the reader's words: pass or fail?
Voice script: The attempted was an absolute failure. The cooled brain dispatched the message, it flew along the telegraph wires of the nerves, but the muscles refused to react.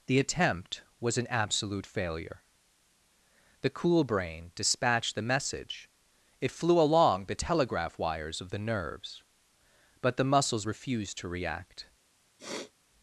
fail